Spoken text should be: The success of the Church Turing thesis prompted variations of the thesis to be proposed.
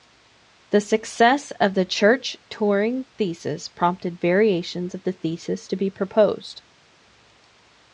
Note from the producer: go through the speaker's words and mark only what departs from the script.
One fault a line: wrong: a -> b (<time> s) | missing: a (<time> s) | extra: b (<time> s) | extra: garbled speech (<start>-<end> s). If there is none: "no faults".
no faults